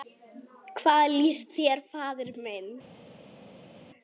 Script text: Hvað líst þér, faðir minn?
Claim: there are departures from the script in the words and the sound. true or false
false